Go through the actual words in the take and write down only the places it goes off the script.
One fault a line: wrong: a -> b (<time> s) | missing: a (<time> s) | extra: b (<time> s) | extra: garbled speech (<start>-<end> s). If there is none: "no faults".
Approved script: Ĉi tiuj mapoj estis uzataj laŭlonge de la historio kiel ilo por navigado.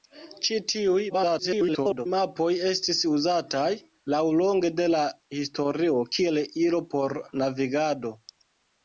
extra: garbled speech (1.1-2.1 s)